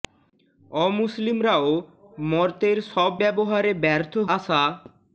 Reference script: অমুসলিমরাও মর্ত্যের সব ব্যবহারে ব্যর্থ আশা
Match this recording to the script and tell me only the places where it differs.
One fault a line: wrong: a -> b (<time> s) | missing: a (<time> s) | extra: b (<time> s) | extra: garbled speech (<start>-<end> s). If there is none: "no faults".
no faults